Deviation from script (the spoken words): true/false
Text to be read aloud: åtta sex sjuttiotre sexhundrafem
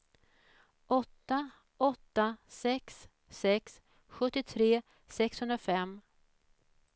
true